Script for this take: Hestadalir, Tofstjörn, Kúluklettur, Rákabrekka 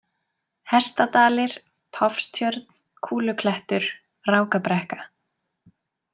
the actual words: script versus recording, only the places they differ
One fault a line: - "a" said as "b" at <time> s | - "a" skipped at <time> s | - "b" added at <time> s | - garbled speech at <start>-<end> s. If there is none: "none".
none